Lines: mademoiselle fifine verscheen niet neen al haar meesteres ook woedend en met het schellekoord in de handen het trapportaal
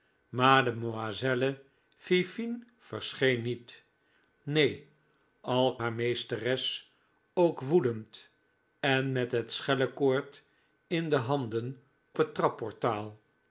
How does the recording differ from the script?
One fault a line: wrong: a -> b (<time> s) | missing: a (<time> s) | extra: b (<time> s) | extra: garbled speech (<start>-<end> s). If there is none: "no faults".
no faults